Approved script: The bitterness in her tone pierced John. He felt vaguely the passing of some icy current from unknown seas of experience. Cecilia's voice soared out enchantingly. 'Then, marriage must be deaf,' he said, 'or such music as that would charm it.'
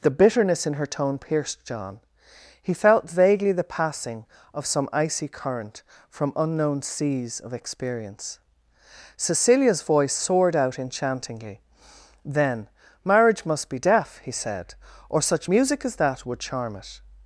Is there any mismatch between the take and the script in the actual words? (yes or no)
no